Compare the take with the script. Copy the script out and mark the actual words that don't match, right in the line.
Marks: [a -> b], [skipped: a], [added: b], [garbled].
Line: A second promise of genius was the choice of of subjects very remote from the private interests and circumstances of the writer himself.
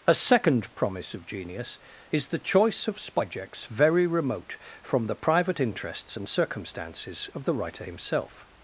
A second promise of genius [was -> is] the choice of [skipped: of] subjects very remote from the private interests and circumstances of the writer himself.